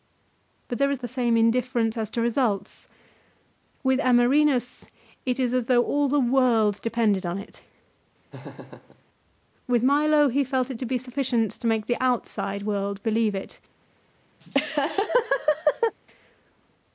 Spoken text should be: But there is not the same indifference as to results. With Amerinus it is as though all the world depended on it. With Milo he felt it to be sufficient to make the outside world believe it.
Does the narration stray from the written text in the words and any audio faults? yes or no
yes